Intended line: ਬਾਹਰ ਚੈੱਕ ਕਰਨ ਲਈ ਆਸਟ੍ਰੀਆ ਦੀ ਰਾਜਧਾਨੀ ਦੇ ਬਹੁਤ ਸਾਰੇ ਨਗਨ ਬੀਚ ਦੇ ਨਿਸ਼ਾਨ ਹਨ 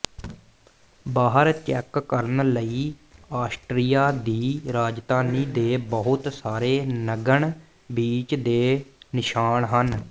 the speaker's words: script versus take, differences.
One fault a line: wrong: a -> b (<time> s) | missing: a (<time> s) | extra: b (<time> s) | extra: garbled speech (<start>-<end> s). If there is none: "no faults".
no faults